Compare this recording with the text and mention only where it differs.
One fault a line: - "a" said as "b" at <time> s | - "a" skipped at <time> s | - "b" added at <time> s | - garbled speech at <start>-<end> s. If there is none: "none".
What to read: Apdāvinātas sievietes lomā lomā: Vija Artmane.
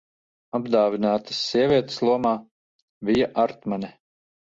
- "lomā" skipped at 2.3 s